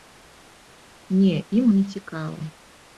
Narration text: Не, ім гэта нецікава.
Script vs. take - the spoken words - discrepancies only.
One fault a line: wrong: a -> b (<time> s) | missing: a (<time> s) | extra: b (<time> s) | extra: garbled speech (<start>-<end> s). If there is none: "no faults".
missing: гэта (1.7 s)